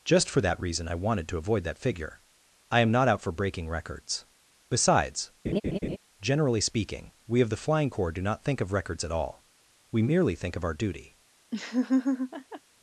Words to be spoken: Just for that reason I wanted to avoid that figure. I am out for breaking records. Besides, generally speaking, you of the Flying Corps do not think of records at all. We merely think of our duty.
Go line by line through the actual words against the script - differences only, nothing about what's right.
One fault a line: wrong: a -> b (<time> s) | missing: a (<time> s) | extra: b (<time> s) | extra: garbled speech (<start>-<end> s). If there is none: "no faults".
extra: not (2.9 s)
wrong: you -> we (7.3 s)